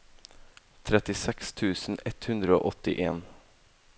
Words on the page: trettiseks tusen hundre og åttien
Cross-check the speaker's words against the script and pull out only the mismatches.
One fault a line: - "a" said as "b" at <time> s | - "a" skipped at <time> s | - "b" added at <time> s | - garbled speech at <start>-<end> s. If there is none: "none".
- "ett" added at 2.1 s